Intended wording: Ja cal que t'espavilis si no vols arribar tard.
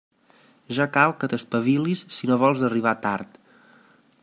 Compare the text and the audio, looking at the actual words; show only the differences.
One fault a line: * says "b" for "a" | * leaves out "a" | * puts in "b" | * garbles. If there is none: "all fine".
all fine